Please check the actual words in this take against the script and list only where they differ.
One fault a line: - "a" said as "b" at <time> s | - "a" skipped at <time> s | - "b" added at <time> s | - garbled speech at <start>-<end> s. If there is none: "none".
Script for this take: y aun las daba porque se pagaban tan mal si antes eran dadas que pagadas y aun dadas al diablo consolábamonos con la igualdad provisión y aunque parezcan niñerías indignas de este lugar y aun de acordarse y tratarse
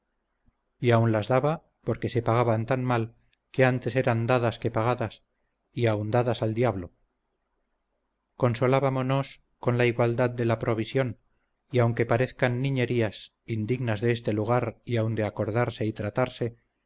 - "si" said as "que" at 3.5 s
- "de la" added at 10.3 s